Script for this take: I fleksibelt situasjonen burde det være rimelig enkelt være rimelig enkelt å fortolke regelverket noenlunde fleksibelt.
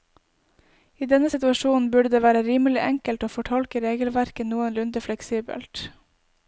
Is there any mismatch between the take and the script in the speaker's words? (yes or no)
yes